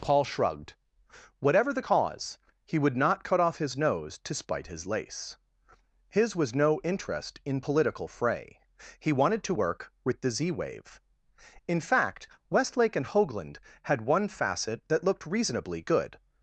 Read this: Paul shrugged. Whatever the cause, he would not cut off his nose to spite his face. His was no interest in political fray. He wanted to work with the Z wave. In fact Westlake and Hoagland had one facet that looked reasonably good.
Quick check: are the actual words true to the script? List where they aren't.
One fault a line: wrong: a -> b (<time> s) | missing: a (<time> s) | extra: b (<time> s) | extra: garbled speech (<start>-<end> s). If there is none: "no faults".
wrong: face -> lace (4.9 s)